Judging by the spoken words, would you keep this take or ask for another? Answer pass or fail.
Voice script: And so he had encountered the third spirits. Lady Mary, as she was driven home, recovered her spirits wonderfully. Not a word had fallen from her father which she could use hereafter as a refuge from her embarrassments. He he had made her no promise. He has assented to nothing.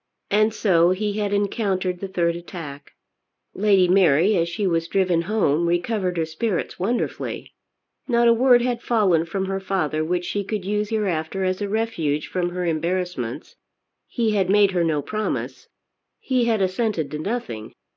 fail